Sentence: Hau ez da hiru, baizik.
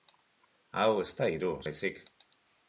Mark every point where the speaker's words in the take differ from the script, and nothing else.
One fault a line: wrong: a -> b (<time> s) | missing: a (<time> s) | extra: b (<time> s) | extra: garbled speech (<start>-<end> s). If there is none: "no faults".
no faults